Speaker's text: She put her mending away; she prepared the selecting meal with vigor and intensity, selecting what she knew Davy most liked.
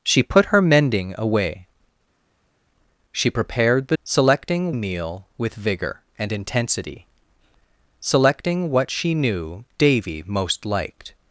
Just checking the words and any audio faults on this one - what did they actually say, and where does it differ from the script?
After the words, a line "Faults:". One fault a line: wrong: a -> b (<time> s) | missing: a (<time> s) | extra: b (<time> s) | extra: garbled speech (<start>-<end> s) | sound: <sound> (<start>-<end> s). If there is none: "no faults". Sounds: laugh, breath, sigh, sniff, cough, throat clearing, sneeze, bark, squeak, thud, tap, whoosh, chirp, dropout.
She put her mending away; she prepared the selecting meal with vigor and intensity, selecting what she knew Davy most liked.
Faults:
no faults